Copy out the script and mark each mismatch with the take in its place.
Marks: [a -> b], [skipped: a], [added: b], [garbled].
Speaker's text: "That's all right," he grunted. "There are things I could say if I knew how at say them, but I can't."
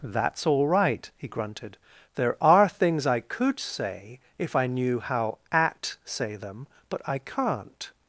"That's all right," he grunted. "There are things I could say if I knew how at say them, but I can't."